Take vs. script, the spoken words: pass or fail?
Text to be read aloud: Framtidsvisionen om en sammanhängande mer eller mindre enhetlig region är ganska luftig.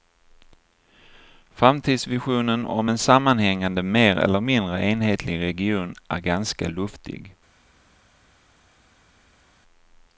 pass